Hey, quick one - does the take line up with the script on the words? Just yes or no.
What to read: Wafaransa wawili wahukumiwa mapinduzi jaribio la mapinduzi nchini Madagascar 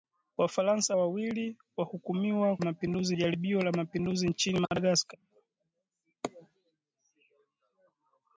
yes